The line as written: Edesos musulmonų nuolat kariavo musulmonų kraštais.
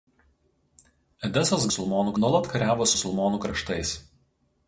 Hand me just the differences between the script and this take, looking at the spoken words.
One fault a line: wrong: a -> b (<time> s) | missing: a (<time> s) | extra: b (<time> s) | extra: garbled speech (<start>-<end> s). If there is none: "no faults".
no faults